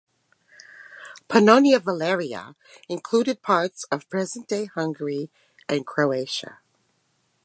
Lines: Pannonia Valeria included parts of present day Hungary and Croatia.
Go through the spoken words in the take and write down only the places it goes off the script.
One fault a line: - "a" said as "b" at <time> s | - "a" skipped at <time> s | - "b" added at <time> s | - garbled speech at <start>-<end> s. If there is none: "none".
none